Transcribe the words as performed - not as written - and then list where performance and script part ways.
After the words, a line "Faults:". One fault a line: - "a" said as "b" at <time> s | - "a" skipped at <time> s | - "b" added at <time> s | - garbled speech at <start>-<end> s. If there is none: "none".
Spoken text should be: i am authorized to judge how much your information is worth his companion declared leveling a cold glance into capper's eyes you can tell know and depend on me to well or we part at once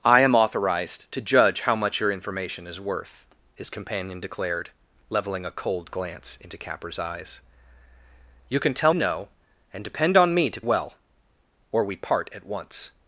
i am authorized to judge how much your information is worth his companion declared leveling a cold glance into capper's eyes you can tell know and depend on me to well or we part at once
Faults:
none